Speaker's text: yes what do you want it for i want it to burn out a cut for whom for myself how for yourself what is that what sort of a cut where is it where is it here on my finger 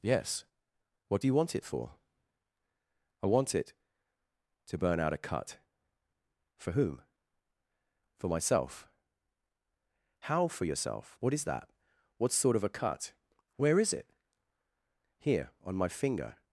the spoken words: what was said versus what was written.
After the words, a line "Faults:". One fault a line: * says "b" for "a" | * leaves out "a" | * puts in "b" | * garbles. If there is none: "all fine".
yes what do you want it for i want it to burn out a cut for whom for myself how for yourself what is that what sort of a cut where is it here on my finger
Faults:
* leaves out "where is it"